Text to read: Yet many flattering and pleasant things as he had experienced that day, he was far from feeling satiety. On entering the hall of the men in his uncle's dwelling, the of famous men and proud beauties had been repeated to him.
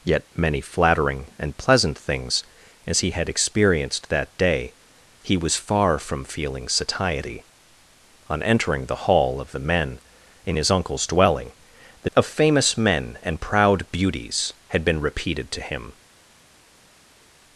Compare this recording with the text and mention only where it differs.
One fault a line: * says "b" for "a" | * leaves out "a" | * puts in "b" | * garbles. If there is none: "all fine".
all fine